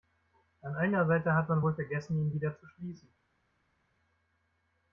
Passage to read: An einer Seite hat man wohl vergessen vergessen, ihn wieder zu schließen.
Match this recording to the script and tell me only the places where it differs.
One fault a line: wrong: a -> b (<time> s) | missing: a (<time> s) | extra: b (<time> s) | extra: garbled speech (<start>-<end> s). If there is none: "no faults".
missing: vergessen (2.2 s)